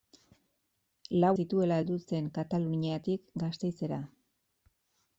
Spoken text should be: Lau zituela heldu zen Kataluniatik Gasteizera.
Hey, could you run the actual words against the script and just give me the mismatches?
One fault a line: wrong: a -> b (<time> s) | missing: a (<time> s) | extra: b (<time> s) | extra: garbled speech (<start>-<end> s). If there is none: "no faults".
no faults